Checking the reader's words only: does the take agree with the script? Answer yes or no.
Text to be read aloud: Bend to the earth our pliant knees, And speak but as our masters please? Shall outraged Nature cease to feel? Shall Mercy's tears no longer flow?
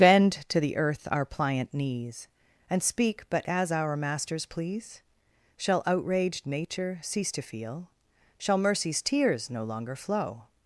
yes